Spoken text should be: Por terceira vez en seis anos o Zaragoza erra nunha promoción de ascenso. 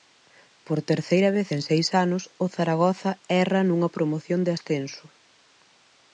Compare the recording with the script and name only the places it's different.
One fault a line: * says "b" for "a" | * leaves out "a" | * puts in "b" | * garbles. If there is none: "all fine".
all fine